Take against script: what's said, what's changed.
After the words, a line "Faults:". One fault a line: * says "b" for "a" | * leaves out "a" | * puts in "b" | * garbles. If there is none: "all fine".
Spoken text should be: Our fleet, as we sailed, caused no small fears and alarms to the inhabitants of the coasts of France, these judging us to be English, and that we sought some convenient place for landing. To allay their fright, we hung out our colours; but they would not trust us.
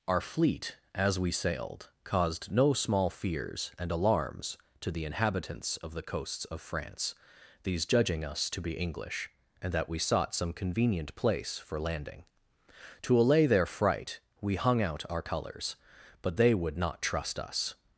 Our fleet, as we sailed, caused no small fears and alarms to the inhabitants of the coasts of France, these judging us to be English, and that we sought some convenient place for landing. To allay their fright, we hung out our colours; but they would not trust us.
Faults:
all fine